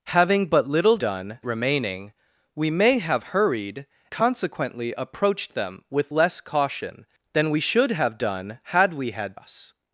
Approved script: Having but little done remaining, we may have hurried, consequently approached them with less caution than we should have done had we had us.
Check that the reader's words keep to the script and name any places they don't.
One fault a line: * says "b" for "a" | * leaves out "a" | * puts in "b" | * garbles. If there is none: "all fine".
all fine